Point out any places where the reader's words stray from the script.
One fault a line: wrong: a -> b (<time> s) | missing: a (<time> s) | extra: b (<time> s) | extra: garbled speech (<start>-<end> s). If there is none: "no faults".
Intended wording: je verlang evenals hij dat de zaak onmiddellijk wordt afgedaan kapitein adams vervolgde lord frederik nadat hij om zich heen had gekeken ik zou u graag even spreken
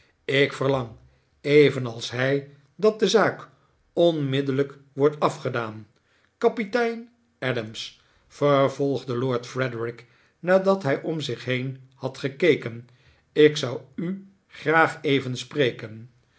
wrong: je -> ik (0.2 s)